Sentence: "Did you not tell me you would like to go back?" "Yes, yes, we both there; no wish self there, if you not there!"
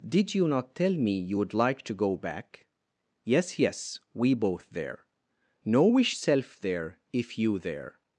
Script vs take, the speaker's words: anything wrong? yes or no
yes